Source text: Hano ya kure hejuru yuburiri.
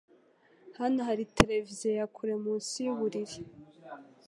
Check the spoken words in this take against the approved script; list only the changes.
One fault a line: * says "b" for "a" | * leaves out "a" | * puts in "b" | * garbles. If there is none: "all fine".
* puts in "hari televiziyo"
* says "munsi" for "hejuru"